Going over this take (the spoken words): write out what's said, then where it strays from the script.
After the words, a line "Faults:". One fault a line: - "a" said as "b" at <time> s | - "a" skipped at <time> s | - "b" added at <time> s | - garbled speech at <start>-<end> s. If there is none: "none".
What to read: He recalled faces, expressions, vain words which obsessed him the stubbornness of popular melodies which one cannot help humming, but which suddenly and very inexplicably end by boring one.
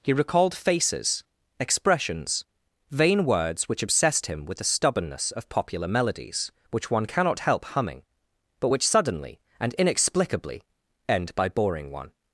He recalled faces, expressions, vain words which obsessed him with the stubbornness of popular melodies which one cannot help humming, but which suddenly and inexplicably end by boring one.
Faults:
- "with" added at 4.5 s
- "very" skipped at 9.7 s